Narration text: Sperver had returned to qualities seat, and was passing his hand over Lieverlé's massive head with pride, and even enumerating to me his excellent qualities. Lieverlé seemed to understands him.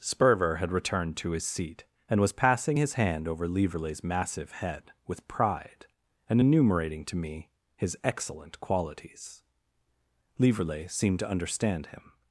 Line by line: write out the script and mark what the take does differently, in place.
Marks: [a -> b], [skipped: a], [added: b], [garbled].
Sperver had returned to [qualities -> his] seat, and was passing his hand over Lieverlé's massive head with pride, and [skipped: even] enumerating to me his excellent qualities. Lieverlé seemed to [understands -> understand] him.